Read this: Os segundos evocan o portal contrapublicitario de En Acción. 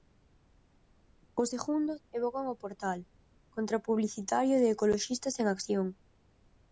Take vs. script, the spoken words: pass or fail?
fail